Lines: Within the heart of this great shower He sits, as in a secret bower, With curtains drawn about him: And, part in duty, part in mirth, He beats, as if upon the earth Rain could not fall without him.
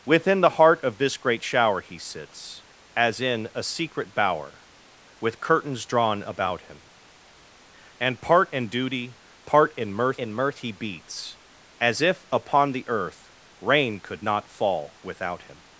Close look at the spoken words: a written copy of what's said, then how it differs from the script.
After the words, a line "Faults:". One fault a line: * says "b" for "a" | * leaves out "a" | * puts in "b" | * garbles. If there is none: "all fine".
Within the heart of this great shower He sits, as in a secret bower, With curtains drawn about him: And, part in duty, part in mirth in mirth, He beats, as if upon the earth Rain could not fall without him.
Faults:
* puts in "in mirth"